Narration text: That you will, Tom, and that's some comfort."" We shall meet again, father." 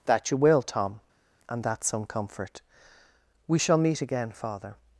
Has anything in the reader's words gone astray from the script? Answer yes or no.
no